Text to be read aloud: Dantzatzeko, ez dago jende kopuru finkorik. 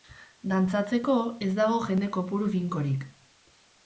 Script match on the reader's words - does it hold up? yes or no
yes